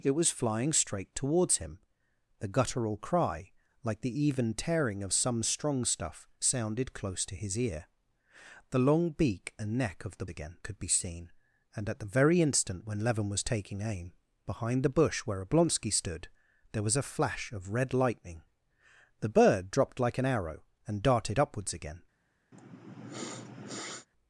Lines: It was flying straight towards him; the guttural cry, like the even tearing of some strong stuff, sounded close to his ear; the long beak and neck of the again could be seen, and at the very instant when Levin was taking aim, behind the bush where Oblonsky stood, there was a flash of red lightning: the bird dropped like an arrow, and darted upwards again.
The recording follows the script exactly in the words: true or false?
true